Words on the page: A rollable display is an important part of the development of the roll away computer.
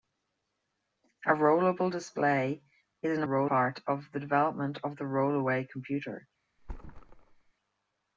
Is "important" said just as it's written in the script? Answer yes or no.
no